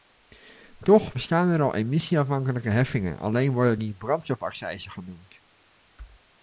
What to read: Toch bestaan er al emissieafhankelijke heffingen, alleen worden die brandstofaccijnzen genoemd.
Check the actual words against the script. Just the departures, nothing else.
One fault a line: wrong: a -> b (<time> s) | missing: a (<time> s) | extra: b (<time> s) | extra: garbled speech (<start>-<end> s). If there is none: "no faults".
no faults